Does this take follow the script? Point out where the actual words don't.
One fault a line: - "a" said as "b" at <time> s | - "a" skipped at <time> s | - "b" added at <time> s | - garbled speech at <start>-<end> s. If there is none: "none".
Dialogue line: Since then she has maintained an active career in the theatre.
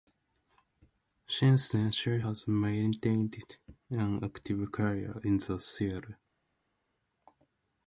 none